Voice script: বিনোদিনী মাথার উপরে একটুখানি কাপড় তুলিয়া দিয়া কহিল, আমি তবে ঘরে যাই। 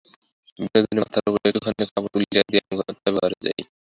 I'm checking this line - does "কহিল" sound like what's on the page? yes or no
no